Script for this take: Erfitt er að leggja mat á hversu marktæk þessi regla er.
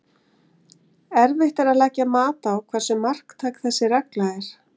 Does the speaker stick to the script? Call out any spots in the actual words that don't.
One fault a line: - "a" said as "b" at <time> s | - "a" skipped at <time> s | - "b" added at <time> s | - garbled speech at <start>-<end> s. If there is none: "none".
none